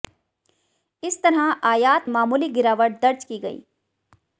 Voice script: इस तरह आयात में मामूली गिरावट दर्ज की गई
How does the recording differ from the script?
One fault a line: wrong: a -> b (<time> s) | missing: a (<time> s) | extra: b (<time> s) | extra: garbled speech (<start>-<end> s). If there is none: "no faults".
missing: में (2.1 s)